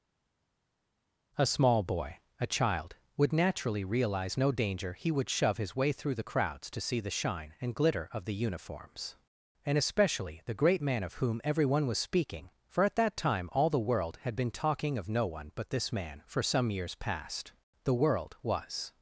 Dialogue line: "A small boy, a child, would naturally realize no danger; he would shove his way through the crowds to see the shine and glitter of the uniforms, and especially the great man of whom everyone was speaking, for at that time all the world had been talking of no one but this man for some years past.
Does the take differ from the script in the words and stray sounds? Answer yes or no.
yes